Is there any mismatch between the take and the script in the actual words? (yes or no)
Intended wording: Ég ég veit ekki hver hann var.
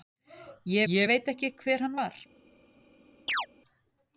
no